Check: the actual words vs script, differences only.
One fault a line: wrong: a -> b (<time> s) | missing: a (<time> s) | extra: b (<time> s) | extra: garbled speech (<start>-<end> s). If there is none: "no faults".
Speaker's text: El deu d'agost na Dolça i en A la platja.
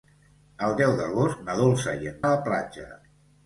no faults